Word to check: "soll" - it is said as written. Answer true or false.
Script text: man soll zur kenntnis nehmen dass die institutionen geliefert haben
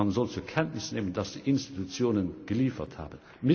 true